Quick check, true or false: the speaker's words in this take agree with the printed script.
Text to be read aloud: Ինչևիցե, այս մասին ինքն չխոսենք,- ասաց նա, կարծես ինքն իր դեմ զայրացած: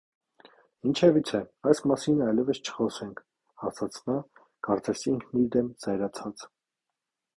false